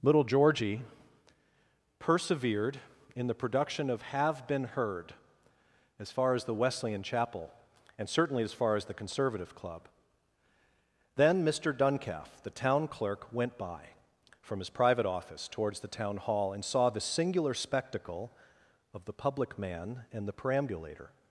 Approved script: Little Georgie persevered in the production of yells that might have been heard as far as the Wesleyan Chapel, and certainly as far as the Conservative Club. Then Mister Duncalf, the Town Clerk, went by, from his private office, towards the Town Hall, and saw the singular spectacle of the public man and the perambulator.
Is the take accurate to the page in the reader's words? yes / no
no